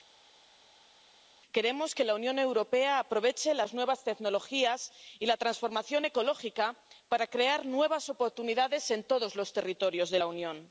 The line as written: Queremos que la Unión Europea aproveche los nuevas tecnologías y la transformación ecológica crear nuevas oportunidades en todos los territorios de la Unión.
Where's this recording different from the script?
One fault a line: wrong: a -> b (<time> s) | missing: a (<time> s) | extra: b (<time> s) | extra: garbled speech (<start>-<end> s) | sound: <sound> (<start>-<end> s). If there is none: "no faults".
wrong: los -> las (3.5 s)
extra: para (7.1 s)